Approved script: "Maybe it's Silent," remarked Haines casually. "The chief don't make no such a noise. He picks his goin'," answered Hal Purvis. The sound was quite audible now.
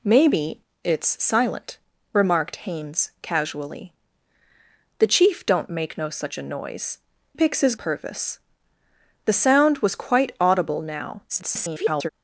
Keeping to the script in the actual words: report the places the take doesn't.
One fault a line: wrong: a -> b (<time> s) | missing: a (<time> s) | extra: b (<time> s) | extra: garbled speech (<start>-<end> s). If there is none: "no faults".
missing: He (7.0 s)
missing: goin answered Hal (7.8 s)
extra: garbled speech (11.3-12.1 s)